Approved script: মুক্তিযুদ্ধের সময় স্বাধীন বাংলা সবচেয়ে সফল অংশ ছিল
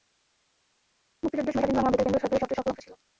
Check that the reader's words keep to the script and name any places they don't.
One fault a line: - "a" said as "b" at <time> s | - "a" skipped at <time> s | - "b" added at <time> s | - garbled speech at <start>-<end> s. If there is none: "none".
- "বেতার কেন্দ্র সরকারের" added at 1.9 s